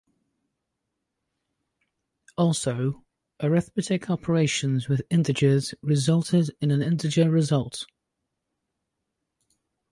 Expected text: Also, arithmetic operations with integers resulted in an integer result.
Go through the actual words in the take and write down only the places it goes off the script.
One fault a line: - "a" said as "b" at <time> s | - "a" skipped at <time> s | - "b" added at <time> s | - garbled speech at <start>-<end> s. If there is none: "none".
none